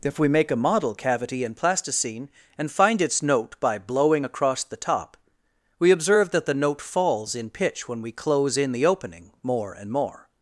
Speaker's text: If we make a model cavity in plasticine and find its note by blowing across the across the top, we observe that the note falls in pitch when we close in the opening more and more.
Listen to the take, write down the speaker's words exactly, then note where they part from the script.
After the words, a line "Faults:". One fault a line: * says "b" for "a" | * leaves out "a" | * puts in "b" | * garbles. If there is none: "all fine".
If we make a model cavity in plasticine and find its note by blowing across the top, we observe that the note falls in pitch when we close in the opening more and more.
Faults:
* leaves out "across the"